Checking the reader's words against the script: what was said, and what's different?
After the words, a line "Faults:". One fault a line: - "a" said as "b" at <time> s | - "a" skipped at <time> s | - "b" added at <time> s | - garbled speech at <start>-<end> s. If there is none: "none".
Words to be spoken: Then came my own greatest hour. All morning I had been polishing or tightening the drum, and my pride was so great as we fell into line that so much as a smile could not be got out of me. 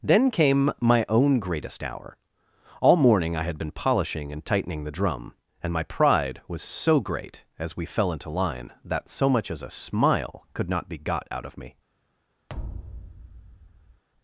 Then came my own greatest hour. All morning I had been polishing and tightening the drum, and my pride was so great as we fell into line that so much as a smile could not be got out of me.
Faults:
- "or" said as "and" at 4.3 s